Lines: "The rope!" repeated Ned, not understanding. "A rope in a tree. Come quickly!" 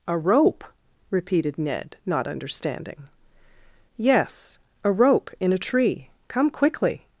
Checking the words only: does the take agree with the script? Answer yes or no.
no